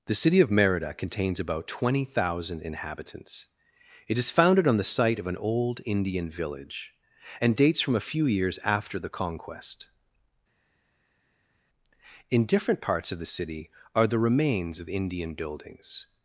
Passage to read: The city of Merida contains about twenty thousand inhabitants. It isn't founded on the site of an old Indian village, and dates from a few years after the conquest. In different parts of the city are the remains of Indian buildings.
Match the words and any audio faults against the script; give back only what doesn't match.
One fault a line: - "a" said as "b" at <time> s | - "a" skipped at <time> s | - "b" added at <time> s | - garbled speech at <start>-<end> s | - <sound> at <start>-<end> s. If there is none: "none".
- "isn't" said as "is" at 4.2 s